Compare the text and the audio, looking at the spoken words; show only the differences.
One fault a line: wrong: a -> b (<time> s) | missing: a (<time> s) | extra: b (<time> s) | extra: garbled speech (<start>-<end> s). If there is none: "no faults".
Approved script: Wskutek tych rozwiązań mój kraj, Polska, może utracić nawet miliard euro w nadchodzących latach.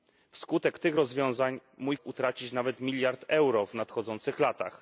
missing: kraj Polska może (2.0 s)